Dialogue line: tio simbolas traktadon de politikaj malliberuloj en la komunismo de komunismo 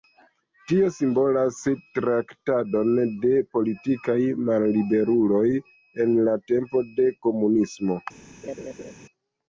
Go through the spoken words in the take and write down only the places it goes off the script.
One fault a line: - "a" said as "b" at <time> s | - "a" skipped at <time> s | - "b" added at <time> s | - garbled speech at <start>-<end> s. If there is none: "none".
- "komunismo" said as "tempo" at 6.5 s